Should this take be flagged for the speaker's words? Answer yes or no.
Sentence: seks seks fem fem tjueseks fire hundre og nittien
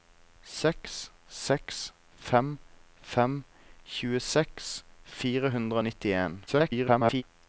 yes